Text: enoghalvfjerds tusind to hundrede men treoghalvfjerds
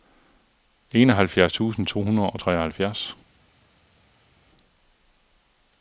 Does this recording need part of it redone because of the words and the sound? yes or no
yes